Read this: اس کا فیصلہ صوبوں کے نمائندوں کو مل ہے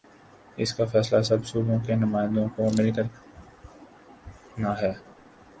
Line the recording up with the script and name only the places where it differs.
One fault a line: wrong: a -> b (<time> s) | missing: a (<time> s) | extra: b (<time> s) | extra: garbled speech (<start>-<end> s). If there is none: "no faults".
extra: سب (1.2 s)
extra: کر نا (2.9 s)